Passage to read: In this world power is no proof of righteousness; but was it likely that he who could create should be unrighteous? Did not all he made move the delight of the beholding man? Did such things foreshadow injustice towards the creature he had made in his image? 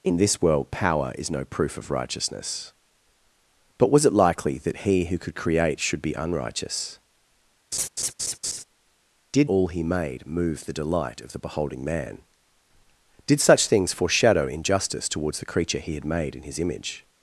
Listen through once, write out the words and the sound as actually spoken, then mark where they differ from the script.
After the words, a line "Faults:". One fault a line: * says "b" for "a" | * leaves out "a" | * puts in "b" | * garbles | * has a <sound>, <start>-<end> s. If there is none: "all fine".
In this world power is no proof of righteousness; but was it likely that he who could create should be unrighteous? Did all he made move the delight of the beholding man? Did such things foreshadow injustice towards the creature he had made in his image?
Faults:
* has a laugh, 7.7-8.6 s
* leaves out "not"